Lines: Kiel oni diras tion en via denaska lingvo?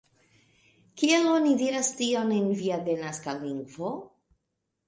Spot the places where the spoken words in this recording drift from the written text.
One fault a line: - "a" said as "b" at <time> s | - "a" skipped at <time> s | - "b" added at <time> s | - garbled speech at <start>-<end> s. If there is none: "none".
none